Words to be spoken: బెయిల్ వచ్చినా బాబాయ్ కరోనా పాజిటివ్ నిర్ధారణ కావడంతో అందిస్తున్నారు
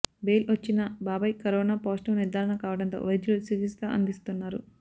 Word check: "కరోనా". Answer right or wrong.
right